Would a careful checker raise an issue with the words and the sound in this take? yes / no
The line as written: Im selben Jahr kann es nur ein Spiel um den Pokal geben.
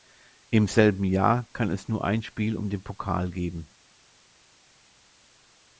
no